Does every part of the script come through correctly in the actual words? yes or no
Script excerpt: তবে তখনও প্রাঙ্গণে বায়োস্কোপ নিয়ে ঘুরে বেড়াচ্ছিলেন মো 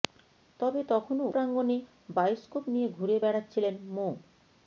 yes